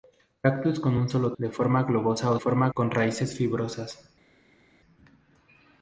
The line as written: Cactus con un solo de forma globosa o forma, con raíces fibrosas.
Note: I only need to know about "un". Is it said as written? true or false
true